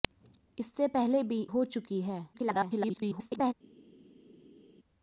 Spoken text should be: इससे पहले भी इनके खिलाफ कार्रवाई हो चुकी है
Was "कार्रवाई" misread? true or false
true